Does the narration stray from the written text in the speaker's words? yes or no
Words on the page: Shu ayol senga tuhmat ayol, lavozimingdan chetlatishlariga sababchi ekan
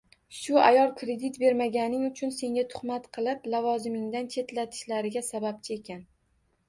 yes